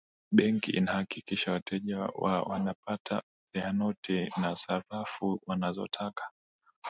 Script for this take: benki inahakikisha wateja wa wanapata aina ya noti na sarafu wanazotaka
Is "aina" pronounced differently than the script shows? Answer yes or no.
yes